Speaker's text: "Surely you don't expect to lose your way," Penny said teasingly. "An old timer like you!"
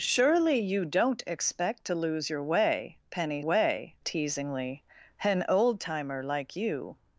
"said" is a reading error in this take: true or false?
true